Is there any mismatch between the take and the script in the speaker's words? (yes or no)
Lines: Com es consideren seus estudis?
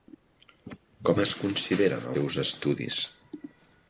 no